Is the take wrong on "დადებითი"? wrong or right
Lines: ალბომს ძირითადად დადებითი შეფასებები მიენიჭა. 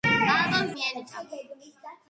wrong